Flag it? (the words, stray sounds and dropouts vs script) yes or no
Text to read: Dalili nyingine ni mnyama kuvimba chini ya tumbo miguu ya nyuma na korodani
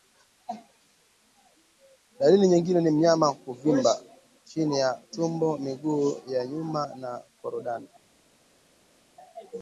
no